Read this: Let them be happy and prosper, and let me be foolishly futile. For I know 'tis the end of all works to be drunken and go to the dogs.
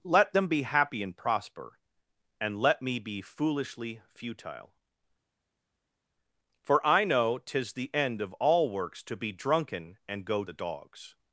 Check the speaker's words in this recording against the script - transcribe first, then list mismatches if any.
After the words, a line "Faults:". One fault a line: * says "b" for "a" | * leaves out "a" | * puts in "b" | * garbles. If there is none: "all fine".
Let them be happy and prosper, and let me be foolishly futile. For I know 'tis the end of all works to be drunken and go the dogs.
Faults:
* leaves out "to"